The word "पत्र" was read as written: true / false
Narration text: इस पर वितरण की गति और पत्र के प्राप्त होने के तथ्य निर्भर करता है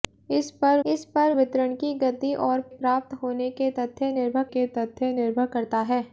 false